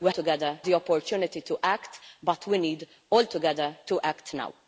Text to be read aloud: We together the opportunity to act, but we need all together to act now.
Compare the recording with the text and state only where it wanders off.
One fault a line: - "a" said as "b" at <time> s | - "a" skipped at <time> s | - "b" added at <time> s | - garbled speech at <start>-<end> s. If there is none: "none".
none